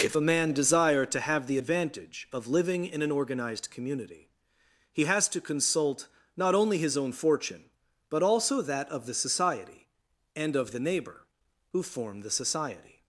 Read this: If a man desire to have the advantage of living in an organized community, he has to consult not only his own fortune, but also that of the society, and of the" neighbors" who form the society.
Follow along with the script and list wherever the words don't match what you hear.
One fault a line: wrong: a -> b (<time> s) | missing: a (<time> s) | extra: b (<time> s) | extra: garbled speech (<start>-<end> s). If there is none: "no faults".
wrong: neighbors -> neighbor (10.8 s)